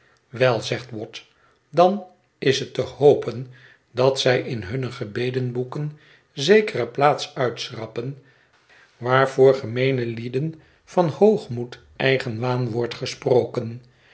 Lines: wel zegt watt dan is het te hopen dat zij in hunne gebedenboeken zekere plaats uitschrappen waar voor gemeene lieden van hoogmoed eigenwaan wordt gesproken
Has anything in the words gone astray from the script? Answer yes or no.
no